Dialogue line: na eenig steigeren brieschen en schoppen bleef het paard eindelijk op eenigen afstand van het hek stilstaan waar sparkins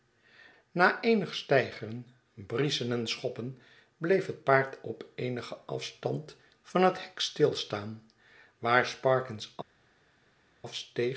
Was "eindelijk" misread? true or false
true